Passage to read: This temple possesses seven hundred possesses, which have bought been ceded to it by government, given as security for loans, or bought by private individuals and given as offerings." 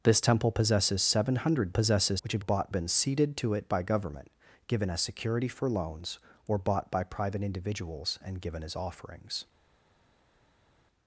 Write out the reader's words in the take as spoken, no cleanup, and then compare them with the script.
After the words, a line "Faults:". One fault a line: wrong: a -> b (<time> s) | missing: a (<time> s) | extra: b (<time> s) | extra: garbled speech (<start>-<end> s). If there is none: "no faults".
This temple possesses seven hundred possesses, which have bought been ceded to it by government, given as security for loans, or bought by private individuals and given as offerings."
Faults:
no faults